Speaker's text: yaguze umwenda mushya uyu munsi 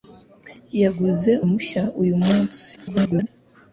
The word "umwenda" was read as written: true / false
false